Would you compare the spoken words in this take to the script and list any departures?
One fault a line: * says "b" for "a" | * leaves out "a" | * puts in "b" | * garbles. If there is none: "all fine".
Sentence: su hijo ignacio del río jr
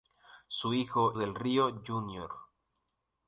* leaves out "ignacio"